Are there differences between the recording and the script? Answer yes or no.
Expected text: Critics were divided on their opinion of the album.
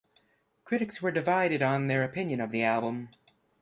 no